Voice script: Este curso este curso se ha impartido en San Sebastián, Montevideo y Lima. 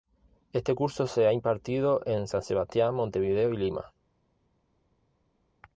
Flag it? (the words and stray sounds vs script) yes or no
yes